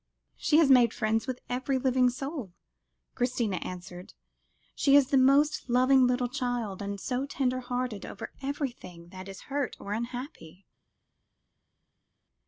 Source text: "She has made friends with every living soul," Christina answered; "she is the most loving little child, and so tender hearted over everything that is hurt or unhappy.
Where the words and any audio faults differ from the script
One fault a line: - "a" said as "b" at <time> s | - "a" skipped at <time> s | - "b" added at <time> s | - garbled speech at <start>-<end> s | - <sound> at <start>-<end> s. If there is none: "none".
none